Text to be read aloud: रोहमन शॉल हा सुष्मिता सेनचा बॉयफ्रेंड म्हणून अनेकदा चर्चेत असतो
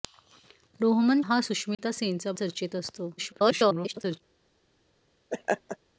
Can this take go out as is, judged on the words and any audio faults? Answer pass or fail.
fail